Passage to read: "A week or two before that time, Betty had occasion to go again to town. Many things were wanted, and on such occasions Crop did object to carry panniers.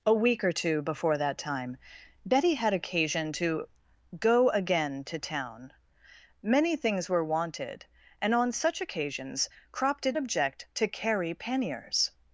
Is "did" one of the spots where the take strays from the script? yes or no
no